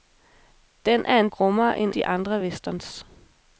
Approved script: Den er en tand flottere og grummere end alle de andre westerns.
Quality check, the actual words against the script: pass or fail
fail